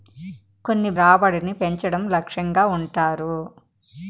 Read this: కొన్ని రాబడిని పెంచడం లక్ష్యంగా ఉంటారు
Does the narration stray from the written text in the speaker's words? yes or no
no